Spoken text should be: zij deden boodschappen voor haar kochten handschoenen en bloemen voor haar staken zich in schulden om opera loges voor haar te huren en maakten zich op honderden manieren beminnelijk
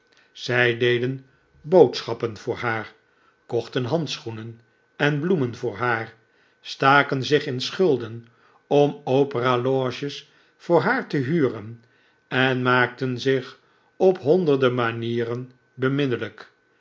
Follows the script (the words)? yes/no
yes